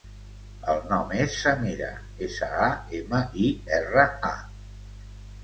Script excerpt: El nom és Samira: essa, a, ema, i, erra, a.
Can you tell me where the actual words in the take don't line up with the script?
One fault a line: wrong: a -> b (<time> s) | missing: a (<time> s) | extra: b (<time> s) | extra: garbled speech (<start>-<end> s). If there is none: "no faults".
no faults